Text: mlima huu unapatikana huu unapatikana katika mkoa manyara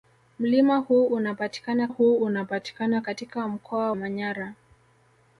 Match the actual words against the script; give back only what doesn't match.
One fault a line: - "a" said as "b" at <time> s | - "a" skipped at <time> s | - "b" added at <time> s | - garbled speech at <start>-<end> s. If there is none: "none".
none